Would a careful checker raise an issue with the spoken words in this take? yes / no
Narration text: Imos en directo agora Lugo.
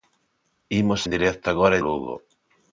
no